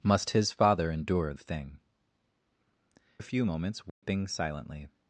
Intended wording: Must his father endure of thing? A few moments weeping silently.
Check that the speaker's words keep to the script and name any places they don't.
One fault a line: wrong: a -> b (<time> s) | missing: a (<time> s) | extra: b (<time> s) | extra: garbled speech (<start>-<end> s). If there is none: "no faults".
no faults